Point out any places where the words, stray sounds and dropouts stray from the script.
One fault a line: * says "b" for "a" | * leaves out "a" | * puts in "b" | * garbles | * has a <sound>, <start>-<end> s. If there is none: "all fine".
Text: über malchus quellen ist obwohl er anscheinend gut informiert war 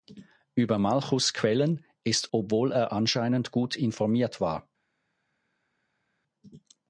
all fine